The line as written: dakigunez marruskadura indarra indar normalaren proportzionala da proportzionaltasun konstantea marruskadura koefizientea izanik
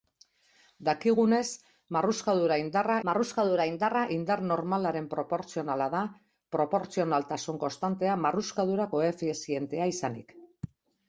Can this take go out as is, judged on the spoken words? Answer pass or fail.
fail